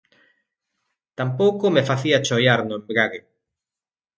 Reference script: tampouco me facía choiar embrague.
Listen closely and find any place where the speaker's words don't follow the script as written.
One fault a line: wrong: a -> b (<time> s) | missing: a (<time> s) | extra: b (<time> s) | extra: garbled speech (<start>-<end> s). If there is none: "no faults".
extra: no (2.6 s)